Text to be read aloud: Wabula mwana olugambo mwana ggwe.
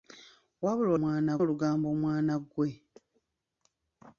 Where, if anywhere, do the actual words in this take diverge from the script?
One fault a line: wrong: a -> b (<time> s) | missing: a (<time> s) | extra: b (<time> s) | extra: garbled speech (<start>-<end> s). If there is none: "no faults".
no faults